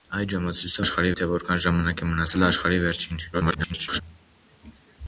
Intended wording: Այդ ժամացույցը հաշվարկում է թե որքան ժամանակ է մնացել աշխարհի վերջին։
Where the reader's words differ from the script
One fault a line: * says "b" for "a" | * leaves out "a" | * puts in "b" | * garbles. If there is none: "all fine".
* says "աշխարհի" for "հաշվարկում"
* garbles